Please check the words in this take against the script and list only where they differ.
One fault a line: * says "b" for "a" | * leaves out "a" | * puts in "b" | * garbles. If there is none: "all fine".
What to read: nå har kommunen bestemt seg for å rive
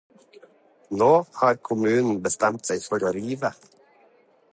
all fine